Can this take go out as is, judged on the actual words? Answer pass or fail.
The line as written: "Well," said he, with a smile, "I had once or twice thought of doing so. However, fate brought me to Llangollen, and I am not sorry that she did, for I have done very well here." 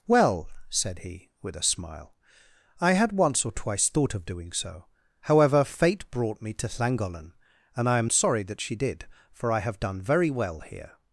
fail